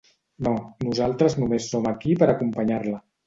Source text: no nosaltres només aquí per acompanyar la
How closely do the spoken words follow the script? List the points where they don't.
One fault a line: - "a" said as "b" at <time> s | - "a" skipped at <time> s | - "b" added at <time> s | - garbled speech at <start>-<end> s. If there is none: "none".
- "som" added at 1.8 s